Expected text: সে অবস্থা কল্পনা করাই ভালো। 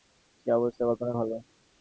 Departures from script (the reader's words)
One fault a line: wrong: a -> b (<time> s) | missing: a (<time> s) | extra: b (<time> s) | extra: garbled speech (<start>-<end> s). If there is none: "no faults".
missing: করাই (1.1 s)